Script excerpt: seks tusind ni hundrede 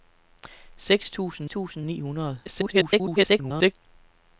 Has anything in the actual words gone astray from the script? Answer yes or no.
yes